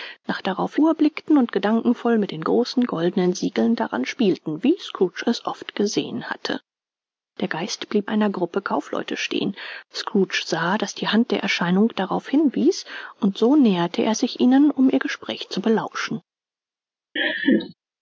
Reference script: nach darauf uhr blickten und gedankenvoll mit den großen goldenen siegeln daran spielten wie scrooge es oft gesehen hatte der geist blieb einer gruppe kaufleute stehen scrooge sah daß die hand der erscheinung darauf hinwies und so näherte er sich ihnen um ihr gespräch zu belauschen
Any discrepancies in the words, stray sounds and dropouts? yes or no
yes